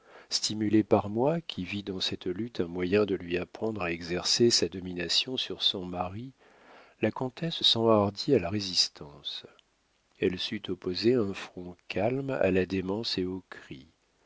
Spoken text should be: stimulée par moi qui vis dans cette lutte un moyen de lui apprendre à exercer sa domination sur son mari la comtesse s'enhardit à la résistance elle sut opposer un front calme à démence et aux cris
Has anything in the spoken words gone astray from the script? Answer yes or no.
yes